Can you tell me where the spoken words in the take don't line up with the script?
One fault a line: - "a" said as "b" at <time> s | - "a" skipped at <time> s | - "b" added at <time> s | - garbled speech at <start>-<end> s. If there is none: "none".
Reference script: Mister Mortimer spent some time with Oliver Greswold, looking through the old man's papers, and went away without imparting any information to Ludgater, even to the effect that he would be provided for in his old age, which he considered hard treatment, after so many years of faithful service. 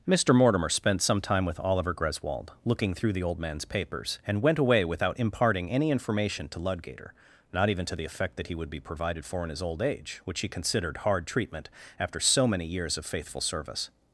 - "not" added at 7.5 s